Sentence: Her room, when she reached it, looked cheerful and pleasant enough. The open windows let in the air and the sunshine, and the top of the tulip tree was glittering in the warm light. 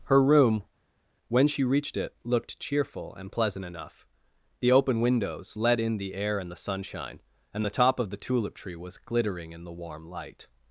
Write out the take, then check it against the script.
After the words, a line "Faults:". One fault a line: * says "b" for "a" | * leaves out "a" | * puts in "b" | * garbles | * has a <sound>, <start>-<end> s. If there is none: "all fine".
Her room, when she reached it, looked cheerful and pleasant enough. The open windows let in the air and the sunshine, and the top of the tulip tree was glittering in the warm light.
Faults:
all fine